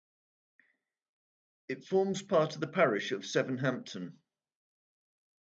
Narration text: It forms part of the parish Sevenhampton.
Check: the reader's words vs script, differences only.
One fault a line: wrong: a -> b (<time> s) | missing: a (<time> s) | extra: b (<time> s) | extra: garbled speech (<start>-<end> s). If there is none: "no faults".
extra: of (3.1 s)